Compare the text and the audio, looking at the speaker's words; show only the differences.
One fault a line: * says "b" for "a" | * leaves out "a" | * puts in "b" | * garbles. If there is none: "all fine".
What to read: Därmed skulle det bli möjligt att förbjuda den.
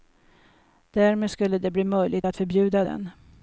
all fine